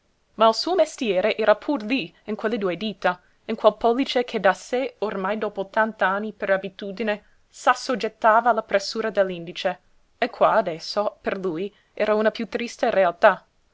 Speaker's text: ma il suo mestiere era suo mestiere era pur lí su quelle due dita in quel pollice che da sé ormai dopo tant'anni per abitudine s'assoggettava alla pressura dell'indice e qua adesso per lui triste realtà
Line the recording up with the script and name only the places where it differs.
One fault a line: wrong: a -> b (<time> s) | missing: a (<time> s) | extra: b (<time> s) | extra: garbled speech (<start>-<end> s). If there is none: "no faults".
missing: suo mestiere era (1.6 s)
wrong: su -> in (2.2 s)
extra: era una piú (11.9 s)